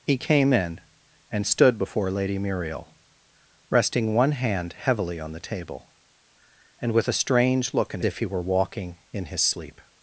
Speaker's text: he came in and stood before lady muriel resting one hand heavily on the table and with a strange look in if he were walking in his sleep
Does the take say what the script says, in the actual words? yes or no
yes